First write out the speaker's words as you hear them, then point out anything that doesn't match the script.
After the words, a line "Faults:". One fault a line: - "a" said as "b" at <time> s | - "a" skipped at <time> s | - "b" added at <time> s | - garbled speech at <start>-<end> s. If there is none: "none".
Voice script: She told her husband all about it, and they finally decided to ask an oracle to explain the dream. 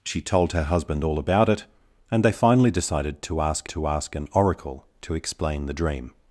She told her husband all about it, and they finally decided to ask to ask an oracle to explain the dream.
Faults:
- "to ask" added at 3.7 s